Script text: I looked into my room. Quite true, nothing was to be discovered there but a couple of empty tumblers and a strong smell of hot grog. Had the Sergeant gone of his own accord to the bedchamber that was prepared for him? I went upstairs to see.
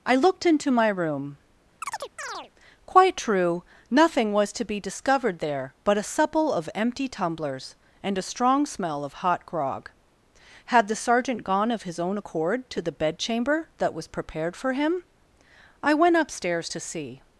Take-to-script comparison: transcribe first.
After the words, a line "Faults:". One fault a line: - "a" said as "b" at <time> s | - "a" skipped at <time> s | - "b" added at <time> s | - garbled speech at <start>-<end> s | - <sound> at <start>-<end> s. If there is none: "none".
I looked into my room. Quite true, nothing was to be discovered there but a supple of empty tumblers and a strong smell of hot grog. Had the Sergeant gone of his own accord to the bedchamber that was prepared for him? I went upstairs to see.
Faults:
- chirp at 1.8-2.5 s
- "couple" said as "supple" at 6.0 s